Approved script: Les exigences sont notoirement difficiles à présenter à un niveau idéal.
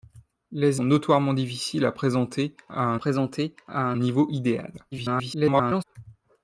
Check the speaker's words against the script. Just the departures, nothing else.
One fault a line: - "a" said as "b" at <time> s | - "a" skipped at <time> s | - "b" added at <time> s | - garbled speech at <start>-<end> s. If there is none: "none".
- "exigences" skipped at 0.8 s
- "présenter à un" added at 2.9 s
- garbled speech at 4.9-5.8 s